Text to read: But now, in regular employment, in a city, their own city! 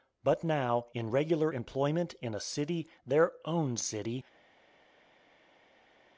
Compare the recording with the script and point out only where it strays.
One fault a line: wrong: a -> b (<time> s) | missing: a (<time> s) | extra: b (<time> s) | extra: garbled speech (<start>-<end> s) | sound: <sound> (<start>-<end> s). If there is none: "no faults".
no faults